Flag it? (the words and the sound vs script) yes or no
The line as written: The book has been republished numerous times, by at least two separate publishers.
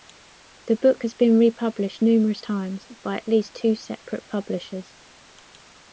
no